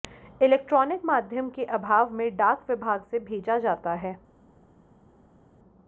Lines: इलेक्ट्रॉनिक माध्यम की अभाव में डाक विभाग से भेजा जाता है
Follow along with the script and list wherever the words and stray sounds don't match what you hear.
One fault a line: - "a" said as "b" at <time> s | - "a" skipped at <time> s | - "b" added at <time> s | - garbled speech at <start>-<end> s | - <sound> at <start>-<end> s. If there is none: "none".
- "की" said as "के" at 1.5 s